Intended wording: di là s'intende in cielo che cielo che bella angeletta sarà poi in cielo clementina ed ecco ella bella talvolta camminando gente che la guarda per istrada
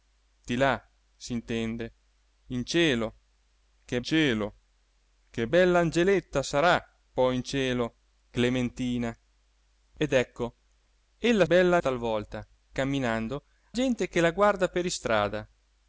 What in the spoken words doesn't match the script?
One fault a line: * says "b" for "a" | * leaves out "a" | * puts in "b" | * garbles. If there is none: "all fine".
all fine